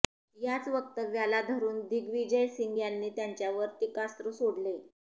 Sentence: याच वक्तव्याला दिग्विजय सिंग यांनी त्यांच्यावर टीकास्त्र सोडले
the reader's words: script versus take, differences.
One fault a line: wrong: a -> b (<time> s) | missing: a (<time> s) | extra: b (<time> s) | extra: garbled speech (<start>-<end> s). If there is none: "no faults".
extra: धरून (1.4 s)